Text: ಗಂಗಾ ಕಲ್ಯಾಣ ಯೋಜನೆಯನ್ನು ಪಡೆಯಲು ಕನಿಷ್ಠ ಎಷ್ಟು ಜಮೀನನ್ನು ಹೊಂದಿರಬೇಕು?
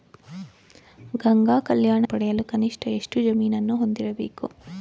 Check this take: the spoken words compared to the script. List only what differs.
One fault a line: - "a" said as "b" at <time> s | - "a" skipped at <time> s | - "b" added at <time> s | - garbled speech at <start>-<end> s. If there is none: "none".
- "ಯೋಜನೆಯನ್ನು" skipped at 2.0 s